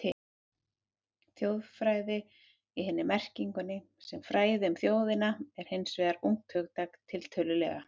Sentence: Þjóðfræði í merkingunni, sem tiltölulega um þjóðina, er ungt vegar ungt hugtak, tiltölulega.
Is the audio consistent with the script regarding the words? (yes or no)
no